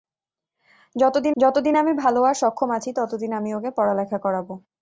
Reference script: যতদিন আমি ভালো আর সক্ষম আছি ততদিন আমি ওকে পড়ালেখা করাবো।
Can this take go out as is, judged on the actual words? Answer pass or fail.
fail